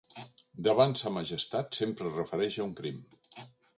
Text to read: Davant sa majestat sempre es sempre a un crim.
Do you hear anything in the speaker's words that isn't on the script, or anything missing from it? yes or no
yes